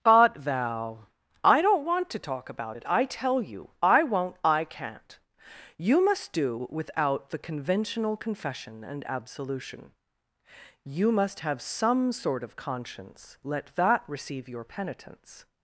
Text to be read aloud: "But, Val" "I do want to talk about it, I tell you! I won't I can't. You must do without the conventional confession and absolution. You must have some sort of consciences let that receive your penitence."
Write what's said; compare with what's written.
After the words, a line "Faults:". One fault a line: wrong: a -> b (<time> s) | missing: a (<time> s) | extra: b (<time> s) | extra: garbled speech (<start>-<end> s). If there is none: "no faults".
"But, Val" "I don't want to talk about it, I tell you! I won't I can't. You must do without the conventional confession and absolution. You must have some sort of conscience let that receive your penitence."
Faults:
wrong: do -> don't (1.6 s)
wrong: consciences -> conscience (12.6 s)